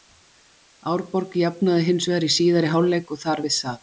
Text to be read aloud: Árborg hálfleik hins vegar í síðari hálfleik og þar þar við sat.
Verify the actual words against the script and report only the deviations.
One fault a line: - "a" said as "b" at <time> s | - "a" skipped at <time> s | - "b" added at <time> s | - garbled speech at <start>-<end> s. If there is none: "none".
- "hálfleik" said as "jafnaði" at 1.4 s
- "þar" skipped at 3.4 s